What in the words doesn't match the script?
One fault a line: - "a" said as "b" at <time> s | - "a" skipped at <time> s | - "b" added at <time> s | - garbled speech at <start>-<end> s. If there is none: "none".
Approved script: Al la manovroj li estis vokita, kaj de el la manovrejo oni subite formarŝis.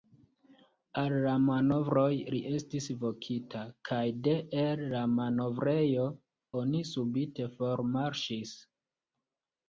none